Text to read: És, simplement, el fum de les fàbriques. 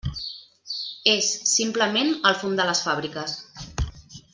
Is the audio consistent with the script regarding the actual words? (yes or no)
yes